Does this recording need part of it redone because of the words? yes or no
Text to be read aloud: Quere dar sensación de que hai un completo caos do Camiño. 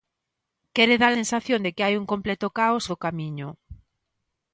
no